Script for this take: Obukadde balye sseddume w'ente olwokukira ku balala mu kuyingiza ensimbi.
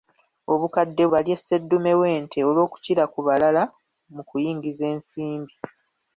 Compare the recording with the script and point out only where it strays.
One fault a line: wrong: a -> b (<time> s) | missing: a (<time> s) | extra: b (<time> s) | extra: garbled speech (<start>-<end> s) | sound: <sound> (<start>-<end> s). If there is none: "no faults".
no faults